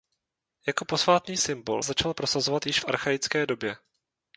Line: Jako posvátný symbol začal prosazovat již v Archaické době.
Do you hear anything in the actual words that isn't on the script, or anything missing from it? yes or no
no